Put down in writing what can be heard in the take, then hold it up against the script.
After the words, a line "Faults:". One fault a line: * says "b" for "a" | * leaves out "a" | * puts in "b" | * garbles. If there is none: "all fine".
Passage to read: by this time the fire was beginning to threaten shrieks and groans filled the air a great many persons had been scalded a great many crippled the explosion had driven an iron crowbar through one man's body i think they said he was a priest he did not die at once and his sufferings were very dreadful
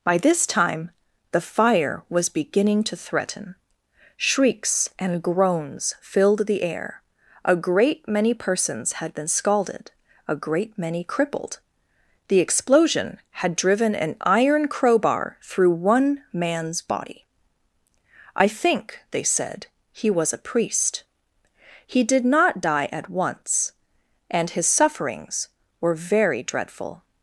by this time the fire was beginning to threaten shrieks and groans filled the air a great many persons had been scalded a great many crippled the explosion had driven an iron crowbar through one man's body i think they said he was a priest he did not die at once and his sufferings were very dreadful
Faults:
all fine